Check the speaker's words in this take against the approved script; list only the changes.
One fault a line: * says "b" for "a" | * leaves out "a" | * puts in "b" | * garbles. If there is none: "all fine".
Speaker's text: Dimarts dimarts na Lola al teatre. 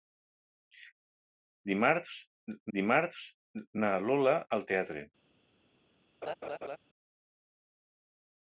all fine